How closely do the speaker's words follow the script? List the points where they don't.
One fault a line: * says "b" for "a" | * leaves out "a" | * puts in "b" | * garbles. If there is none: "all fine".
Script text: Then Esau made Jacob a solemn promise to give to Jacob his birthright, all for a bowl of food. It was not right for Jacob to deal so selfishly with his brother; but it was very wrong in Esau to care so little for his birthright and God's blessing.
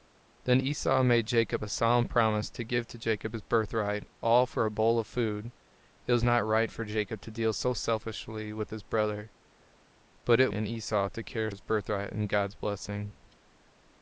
* leaves out "was very wrong"
* leaves out "so little for"